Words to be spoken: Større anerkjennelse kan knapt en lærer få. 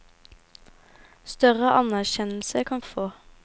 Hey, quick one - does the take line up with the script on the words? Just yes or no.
no